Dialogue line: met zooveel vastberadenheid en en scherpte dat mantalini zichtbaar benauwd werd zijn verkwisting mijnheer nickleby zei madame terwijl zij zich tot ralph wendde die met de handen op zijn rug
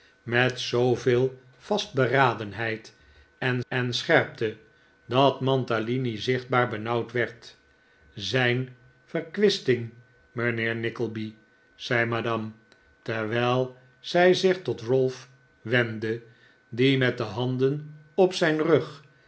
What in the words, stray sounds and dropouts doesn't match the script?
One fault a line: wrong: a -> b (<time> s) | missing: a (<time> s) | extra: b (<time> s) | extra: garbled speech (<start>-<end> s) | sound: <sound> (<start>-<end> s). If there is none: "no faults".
no faults